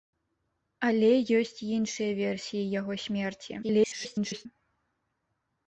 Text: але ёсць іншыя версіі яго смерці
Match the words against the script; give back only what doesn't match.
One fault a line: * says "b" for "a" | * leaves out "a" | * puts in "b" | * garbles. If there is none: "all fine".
* garbles